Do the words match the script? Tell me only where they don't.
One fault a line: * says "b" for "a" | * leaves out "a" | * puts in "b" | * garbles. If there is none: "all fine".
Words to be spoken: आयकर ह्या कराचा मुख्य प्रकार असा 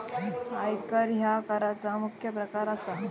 all fine